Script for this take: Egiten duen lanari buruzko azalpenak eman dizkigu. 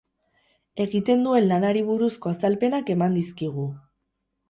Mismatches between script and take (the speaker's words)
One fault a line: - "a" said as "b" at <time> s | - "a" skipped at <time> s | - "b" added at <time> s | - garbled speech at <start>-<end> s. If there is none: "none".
none